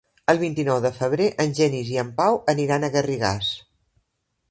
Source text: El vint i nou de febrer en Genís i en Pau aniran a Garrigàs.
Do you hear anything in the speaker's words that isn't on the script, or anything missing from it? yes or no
no